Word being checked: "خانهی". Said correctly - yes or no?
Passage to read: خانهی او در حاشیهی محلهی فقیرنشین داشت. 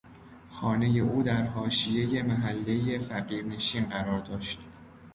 yes